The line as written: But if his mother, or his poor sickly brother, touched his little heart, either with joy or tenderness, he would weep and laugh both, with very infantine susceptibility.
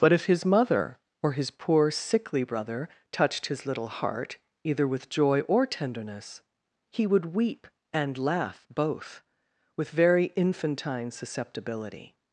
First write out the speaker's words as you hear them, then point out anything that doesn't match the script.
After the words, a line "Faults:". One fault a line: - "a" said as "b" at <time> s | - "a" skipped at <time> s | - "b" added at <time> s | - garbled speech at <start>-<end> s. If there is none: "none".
But if his mother, or his poor sickly brother, touched his little heart, either with joy or tenderness, he would weep and laugh both, with very infantine susceptibility.
Faults:
none